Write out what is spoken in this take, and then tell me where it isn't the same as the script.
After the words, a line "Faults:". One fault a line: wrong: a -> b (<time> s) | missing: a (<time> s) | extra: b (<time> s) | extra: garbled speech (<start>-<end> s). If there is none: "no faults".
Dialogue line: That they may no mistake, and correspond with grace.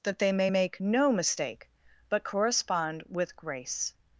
That they may make no mistake, but correspond with grace.
Faults:
extra: make (0.5 s)
wrong: and -> but (2.1 s)